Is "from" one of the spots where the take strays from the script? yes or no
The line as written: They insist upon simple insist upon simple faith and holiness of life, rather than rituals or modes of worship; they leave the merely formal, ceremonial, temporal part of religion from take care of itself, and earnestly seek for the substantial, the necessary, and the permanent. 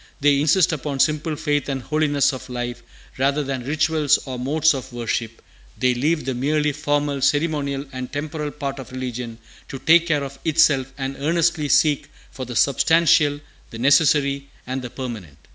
yes